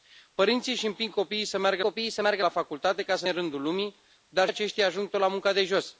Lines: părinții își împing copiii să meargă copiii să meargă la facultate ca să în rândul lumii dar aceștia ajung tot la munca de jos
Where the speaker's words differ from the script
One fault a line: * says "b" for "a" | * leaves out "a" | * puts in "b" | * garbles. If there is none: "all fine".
all fine